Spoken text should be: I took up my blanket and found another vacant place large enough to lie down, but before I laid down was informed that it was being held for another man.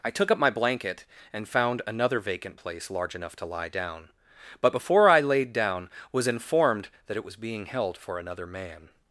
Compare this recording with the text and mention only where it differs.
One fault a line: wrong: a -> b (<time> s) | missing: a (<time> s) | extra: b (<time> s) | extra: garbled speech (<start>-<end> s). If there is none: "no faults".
no faults